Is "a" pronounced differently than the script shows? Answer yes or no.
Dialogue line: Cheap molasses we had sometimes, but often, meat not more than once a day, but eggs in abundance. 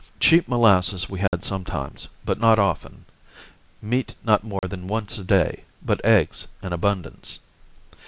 no